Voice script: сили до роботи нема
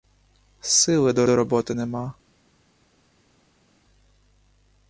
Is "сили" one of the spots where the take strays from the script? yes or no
no